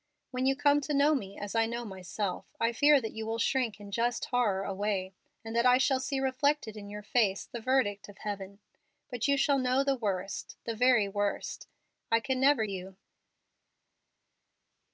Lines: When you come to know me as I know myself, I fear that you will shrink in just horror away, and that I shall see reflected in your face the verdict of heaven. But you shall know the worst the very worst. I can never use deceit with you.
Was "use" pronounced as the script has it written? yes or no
no